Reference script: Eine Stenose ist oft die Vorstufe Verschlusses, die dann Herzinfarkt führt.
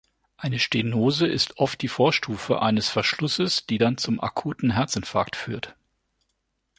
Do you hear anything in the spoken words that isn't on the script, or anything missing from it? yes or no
yes